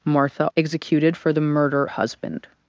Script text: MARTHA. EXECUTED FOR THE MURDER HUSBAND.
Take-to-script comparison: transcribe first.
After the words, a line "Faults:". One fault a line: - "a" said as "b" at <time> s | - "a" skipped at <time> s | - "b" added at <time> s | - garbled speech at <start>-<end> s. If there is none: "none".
MARTHA. EXECUTED FOR THE MURDER HUSBAND.
Faults:
none